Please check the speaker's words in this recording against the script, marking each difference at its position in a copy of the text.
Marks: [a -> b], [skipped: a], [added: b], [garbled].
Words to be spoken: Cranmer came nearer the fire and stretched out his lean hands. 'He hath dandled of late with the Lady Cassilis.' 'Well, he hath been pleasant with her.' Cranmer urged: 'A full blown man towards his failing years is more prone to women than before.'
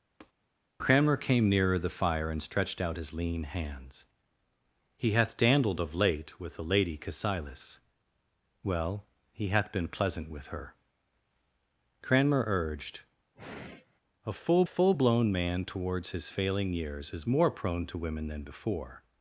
Cranmer came nearer the fire and stretched out his lean hands. 'He hath dandled of late with the Lady Cassilis.' 'Well, he hath been pleasant with her.' Cranmer urged: 'A full [added: full] blown man towards his failing years is more prone to women than before.'